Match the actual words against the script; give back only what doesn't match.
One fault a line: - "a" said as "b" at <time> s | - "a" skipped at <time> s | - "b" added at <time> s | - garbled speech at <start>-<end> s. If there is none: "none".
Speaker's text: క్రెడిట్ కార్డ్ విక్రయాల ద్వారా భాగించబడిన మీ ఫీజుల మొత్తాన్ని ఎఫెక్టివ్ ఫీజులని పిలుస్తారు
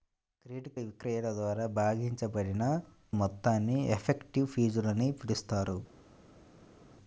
- "కార్డ్" skipped at 0.7 s
- "మీ ఫీజుల" skipped at 2.6 s